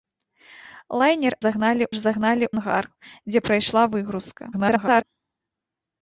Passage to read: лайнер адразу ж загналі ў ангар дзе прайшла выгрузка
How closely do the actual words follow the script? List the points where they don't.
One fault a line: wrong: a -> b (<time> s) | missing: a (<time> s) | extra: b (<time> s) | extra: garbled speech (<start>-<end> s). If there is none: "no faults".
wrong: адразу -> загналі (1.5 s)
missing: ў (2.5 s)
extra: garbled speech (4.5-5.0 s)